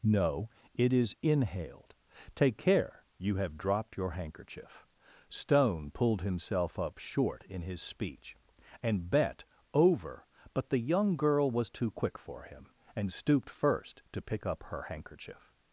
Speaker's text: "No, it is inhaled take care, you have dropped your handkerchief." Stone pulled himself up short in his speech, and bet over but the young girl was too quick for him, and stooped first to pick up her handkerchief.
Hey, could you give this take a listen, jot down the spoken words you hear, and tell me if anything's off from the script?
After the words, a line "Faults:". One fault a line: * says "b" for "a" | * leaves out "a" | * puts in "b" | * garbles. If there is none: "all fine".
"No, it is inhaled take care, you have dropped your handkerchief." Stone pulled himself up short in his speech, and bet over but the young girl was too quick for him, and stooped first to pick up her handkerchief.
Faults:
all fine